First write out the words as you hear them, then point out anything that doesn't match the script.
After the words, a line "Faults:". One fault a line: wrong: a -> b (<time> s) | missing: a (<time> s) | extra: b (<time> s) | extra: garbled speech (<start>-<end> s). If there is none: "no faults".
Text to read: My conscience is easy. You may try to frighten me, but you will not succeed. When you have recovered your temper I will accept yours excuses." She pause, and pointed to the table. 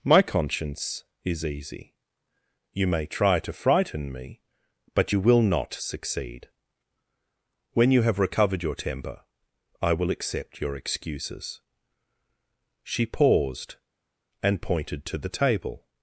My conscience is easy. You may try to frighten me, but you will not succeed. When you have recovered your temper I will accept your excuses." She paused, and pointed to the table.
Faults:
wrong: yours -> your (10.6 s)
wrong: pause -> paused (13.1 s)